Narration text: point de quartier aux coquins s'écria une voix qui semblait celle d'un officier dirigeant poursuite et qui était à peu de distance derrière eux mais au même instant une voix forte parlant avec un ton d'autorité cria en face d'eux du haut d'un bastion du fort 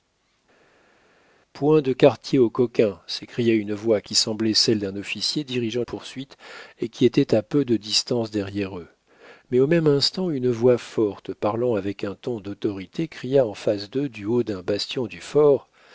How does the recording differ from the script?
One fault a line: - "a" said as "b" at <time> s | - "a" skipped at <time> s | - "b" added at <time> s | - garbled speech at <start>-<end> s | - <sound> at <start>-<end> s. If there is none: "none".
none